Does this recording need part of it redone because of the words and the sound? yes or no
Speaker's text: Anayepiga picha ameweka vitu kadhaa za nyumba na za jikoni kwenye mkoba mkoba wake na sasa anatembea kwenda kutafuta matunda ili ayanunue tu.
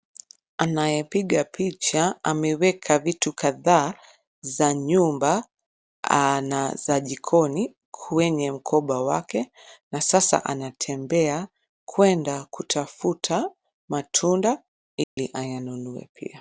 yes